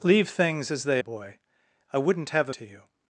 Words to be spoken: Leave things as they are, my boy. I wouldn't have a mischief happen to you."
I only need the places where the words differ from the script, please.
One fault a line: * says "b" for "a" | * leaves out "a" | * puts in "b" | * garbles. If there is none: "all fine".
* leaves out "are my"
* leaves out "mischief happen"